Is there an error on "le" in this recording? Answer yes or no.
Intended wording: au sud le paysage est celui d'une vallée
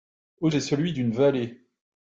yes